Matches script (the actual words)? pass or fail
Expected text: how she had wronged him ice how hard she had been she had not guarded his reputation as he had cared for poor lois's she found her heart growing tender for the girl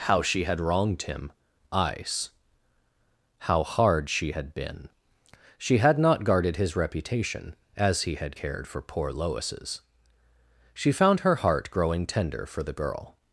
pass